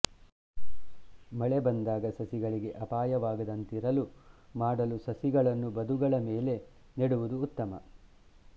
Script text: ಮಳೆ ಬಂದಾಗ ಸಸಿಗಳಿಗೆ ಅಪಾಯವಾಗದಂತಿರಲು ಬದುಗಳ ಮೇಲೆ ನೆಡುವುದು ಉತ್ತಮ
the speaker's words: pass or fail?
fail